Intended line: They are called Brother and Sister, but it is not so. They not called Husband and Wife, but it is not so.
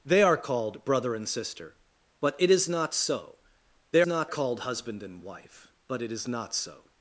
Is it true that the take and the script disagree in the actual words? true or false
false